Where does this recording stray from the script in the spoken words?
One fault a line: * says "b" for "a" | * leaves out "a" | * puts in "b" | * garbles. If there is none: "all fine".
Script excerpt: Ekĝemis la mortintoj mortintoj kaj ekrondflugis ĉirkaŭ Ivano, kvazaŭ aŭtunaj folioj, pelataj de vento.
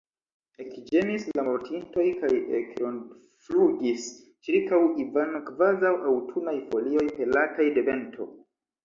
* leaves out "mortintoj"